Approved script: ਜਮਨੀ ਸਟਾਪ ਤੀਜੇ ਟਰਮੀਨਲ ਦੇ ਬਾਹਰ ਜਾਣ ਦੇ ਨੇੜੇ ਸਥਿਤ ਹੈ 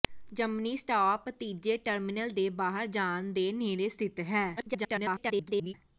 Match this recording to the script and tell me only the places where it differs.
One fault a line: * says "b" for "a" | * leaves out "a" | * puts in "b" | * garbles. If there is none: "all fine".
* garbles